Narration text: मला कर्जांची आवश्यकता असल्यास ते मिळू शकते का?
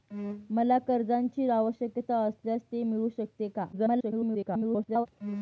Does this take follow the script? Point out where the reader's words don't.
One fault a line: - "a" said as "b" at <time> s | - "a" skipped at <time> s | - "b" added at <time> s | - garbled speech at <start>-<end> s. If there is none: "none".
- garbled speech at 3.7-5.1 s